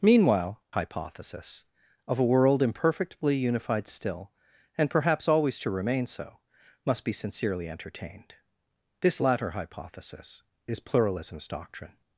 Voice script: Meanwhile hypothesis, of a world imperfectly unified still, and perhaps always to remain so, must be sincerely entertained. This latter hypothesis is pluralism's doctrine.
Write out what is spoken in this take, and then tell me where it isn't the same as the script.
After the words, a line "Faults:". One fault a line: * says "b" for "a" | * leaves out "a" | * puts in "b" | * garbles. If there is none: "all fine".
Meanwhile hypothesis, of a world imperfectly unified still, and perhaps always to remain so, must be sincerely entertained. This latter hypothesis is pluralism's doctrine.
Faults:
all fine